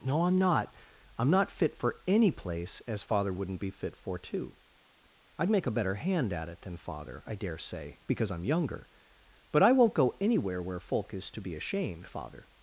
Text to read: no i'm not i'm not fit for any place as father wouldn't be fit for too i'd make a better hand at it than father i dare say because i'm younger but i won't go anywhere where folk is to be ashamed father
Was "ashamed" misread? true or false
false